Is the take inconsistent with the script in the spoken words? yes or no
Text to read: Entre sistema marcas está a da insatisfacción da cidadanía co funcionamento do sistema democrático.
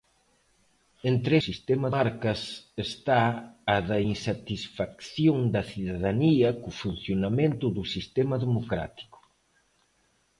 no